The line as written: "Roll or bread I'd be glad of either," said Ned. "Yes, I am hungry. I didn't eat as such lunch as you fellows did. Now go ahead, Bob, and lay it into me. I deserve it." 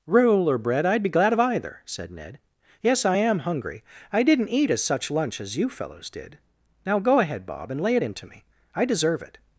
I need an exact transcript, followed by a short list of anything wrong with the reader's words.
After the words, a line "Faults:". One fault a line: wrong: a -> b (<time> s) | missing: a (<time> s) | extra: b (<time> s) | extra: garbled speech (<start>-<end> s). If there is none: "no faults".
"Roll or bread I'd be glad of either," said Ned. "Yes, I am hungry. I didn't eat as such lunch as you fellows did. Now go ahead, Bob, and lay it into me. I deserve it."
Faults:
no faults